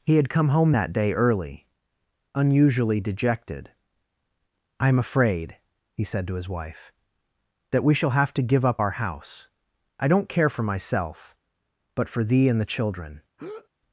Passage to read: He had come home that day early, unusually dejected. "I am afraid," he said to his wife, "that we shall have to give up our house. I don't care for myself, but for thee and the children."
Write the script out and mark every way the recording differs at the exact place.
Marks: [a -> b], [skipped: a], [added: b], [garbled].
He had come home that day early, unusually dejected. "I am afraid," he said to his wife, "that we shall have to give up our house. I don't care for myself, but for thee and the children."